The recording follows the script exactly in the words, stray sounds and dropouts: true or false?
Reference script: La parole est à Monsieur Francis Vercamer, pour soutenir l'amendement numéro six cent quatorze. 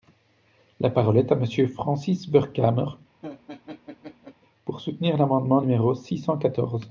false